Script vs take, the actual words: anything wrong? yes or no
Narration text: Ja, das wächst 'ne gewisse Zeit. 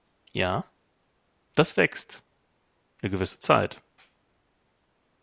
no